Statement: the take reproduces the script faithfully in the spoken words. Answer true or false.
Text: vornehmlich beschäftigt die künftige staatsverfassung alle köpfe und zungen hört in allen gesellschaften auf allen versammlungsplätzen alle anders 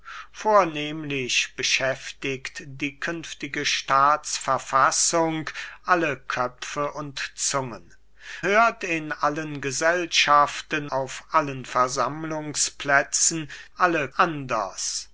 true